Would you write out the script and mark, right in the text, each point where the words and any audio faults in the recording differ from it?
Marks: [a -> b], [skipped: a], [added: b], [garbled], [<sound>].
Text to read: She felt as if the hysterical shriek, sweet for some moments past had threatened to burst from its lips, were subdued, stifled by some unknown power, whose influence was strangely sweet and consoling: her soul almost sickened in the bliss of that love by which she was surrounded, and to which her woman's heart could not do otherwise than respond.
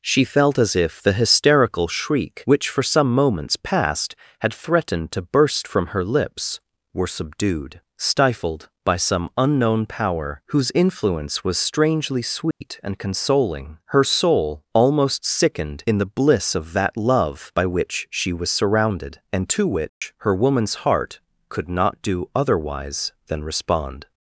She felt as if the hysterical shriek, [sweet -> which] for some moments past had threatened to burst from [its -> her] lips, were subdued, stifled by some unknown power, whose influence was strangely sweet [dropout] and consoling: her soul almost sickened in the bliss of that love by which she was surrounded, and to which [dropout] her woman's heart could not do otherwise than respond.